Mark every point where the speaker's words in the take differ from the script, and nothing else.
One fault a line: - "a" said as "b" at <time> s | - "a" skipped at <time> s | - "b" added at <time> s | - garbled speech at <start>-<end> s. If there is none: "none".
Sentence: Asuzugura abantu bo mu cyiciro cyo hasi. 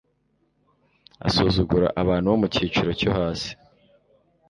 none